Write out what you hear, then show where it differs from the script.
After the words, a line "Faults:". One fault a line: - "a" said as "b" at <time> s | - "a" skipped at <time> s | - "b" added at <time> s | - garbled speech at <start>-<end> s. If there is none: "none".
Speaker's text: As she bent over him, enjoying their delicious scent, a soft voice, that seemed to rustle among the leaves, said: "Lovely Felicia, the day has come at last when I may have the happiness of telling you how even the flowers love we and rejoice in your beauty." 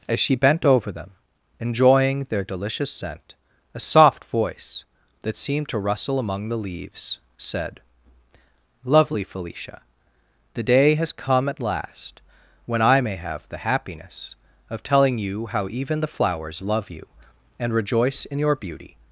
As she bent over them, enjoying their delicious scent, a soft voice, that seemed to rustle among the leaves, said: "Lovely Felicia, the day has come at last when I may have the happiness of telling you how even the flowers love you and rejoice in your beauty."
Faults:
- "him" said as "them" at 0.9 s
- "we" said as "you" at 16.9 s